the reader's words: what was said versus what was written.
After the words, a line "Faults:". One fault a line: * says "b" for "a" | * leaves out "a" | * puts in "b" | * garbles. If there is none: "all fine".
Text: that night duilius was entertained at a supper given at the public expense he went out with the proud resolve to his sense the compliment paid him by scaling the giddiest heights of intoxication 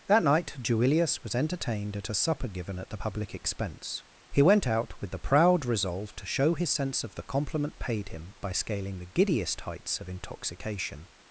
that night duilius was entertained at a supper given at the public expense he went out with the proud resolve to show his sense of the compliment paid him by scaling the giddiest heights of intoxication
Faults:
* puts in "show"
* puts in "of"